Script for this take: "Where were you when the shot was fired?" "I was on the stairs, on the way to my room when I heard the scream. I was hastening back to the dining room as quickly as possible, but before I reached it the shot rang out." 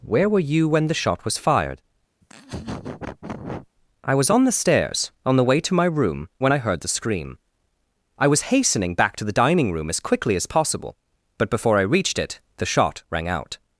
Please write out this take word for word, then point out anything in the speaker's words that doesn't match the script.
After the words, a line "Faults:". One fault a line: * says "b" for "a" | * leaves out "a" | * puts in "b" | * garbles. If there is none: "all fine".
"Where were you when the shot was fired?" "I was on the stairs, on the way to my room when I heard the scream. I was hastening back to the dining room as quickly as possible, but before I reached it the shot rang out."
Faults:
all fine